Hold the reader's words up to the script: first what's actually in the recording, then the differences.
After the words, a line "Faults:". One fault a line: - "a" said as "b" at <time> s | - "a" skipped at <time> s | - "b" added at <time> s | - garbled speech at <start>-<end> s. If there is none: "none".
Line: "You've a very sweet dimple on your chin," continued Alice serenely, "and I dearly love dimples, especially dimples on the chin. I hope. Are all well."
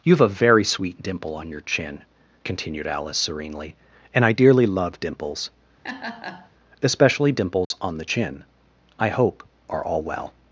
"You've a very sweet dimple on your chin," continued Alice serenely, "and I dearly love dimples, especially dimples on the chin. I hope. Are all well."
Faults:
none